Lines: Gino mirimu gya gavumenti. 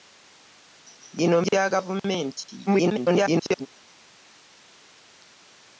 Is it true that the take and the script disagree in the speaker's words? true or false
true